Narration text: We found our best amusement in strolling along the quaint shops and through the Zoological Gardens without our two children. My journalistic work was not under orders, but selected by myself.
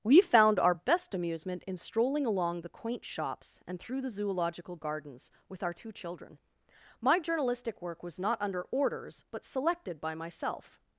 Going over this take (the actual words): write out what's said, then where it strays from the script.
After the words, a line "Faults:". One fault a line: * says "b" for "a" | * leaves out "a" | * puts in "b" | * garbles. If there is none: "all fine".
We found our best amusement in strolling along the quaint shops and through the Zoological Gardens with our two children. My journalistic work was not under orders, but selected by myself.
Faults:
* says "with" for "without"